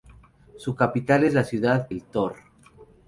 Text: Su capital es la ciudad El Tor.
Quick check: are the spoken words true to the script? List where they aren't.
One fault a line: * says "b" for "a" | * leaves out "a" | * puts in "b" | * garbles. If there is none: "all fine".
all fine